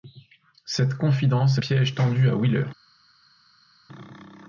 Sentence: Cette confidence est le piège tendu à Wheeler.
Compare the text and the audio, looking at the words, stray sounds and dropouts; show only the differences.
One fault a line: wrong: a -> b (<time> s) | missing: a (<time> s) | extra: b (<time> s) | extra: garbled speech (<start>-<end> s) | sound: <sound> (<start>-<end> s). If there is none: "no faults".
missing: le (1.6 s)